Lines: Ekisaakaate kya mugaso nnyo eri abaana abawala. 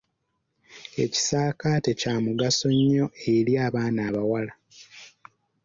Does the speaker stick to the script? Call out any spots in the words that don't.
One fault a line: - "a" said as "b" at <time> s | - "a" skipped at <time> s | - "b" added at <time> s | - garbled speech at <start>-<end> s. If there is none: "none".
none